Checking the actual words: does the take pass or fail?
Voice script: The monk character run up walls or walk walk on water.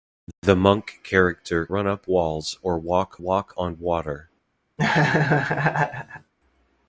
pass